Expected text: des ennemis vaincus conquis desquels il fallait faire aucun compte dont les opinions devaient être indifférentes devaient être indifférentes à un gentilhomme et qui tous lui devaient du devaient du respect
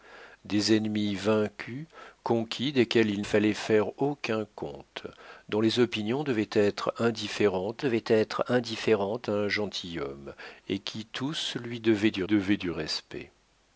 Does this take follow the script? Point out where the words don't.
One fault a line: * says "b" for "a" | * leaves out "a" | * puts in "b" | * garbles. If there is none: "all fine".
all fine